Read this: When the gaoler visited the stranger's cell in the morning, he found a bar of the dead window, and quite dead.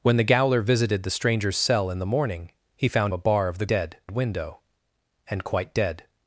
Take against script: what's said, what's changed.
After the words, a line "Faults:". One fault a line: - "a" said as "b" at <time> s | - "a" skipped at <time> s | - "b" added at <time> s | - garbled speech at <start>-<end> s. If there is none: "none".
When the gaoler visited the stranger's cell in the morning, he found a bar of the dead window, and quite dead.
Faults:
none